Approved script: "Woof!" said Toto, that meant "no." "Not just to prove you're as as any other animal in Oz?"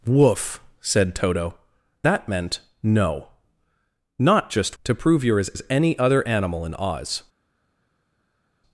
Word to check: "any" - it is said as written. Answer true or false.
true